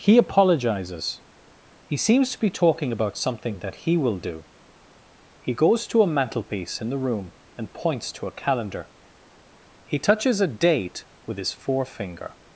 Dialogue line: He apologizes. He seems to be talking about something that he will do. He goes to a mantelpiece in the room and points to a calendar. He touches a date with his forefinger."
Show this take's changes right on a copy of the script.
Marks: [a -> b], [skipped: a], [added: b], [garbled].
He apologizes. He seems to be talking about something that he will do. He goes to a mantelpiece in the room and points to a calendar. He touches a date with his forefinger."